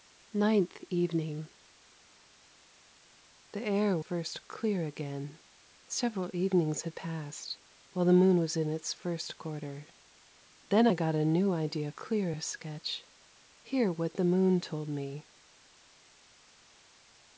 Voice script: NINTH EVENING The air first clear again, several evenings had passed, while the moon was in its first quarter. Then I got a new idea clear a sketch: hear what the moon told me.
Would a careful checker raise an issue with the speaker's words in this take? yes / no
no